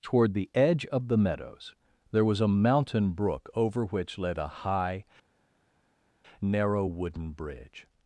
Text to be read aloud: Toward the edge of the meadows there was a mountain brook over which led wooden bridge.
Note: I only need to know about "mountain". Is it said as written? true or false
true